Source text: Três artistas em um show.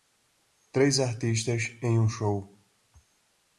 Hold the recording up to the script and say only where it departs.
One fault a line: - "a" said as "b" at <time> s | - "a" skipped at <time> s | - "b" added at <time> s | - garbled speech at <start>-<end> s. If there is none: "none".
none